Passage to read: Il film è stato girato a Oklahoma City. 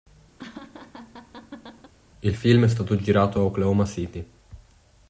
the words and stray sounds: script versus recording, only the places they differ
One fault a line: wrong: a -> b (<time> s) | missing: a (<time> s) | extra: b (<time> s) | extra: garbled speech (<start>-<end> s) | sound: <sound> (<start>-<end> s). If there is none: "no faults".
sound: laugh (0.4-1.9 s)